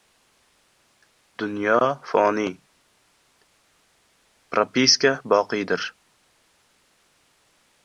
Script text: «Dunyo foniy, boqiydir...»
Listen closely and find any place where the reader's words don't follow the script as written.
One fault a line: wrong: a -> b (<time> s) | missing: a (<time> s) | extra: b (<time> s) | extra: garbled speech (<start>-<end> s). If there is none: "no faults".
extra: propiska (4.5 s)